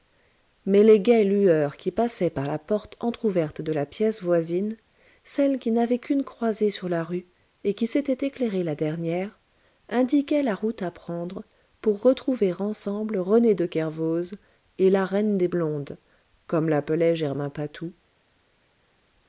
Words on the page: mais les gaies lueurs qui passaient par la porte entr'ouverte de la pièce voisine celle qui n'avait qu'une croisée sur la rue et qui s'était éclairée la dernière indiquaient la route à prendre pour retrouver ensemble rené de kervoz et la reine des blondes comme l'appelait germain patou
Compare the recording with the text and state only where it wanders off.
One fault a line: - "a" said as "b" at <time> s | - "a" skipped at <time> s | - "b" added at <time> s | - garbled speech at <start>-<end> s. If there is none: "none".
none